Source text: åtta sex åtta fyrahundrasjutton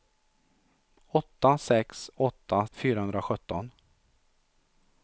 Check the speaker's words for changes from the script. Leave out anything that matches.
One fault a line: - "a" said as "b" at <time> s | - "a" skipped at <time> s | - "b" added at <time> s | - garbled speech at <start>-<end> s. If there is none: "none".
none